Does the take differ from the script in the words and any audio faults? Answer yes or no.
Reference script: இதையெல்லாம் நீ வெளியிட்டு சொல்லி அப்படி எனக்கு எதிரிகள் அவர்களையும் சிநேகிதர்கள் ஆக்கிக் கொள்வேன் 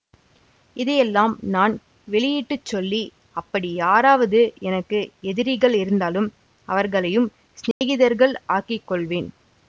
yes